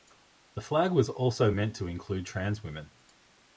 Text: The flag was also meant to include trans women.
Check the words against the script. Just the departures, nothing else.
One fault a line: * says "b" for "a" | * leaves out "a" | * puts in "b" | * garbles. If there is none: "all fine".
all fine